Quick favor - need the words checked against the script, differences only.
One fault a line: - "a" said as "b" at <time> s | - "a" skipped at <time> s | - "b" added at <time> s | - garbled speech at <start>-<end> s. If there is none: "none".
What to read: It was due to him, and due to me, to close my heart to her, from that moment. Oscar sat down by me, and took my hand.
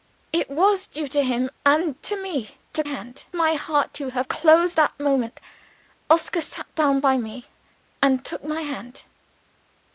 - "due" skipped at 2.0 s
- "close" said as "hand" at 2.8 s
- "from" said as "close" at 4.2 s